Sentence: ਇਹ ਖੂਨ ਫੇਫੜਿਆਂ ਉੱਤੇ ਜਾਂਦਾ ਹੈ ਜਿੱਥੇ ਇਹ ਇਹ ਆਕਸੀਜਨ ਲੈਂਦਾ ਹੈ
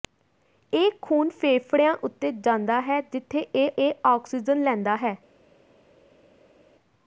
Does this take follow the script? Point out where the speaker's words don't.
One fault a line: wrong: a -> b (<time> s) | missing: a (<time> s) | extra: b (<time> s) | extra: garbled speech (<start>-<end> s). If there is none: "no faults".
no faults